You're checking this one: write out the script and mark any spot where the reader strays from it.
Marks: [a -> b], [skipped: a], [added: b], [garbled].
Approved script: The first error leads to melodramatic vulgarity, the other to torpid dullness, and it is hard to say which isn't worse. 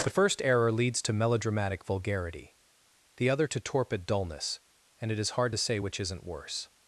The first error leads to melodramatic vulgarity, the other to torpid dullness, and it is hard to say which isn't worse.